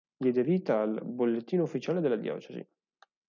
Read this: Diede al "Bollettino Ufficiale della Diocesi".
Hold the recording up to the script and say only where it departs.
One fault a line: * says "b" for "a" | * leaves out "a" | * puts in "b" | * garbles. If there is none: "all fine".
* puts in "vita"